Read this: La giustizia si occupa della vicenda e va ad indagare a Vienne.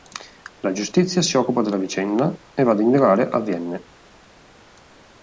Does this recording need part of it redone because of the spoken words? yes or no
no